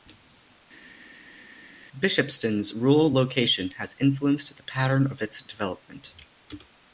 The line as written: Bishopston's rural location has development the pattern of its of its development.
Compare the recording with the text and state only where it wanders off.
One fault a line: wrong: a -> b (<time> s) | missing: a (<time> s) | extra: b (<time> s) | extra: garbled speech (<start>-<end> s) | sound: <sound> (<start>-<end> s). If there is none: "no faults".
wrong: development -> influenced (4.0 s)
missing: of its (5.4 s)